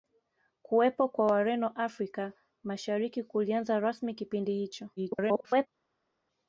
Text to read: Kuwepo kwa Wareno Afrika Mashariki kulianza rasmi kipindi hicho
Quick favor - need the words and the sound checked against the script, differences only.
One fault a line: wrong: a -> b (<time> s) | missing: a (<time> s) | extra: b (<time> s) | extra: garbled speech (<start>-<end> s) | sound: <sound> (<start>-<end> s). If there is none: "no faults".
extra: garbled speech (5.0-5.7 s)